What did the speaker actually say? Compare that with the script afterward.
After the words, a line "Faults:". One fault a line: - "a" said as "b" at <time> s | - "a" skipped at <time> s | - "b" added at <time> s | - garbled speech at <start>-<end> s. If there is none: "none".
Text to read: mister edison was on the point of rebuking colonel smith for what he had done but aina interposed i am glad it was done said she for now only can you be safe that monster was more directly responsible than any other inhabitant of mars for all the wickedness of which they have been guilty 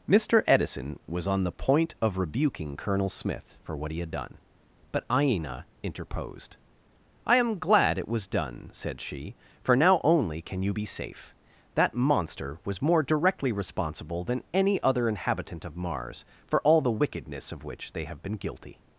mister edison was on the point of rebuking colonel smith for what he had done but aina interposed i am glad it was done said she for now only can you be safe that monster was more directly responsible than any other inhabitant of mars for all the wickedness of which they have been guilty
Faults:
none